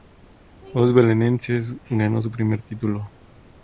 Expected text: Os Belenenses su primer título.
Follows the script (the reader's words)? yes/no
no